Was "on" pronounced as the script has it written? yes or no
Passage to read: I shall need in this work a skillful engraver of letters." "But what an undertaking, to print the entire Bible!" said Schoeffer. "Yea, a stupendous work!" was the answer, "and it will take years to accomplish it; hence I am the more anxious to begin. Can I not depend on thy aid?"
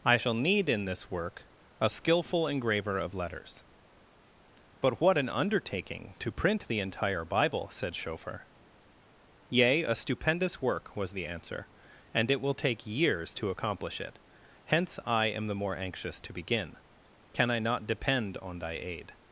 yes